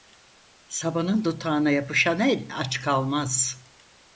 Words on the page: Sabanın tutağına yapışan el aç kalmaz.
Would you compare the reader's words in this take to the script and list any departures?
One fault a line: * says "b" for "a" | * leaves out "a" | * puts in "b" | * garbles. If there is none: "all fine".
all fine